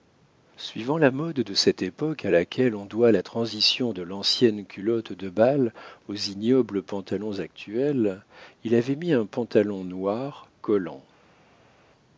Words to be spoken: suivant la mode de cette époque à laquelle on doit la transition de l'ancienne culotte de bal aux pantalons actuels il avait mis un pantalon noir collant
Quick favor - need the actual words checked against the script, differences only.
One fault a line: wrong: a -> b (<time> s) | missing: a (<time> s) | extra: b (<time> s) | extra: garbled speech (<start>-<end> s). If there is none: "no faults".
extra: ignobles (6.2 s)